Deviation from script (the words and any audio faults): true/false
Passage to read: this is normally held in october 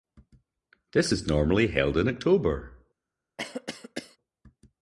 true